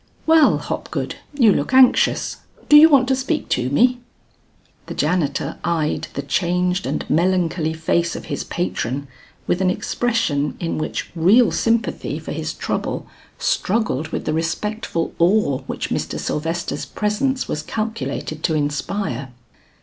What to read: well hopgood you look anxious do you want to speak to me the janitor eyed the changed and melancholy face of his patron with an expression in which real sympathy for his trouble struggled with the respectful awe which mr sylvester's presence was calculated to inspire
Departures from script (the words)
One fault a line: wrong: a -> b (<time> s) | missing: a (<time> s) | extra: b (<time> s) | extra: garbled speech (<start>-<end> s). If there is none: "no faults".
no faults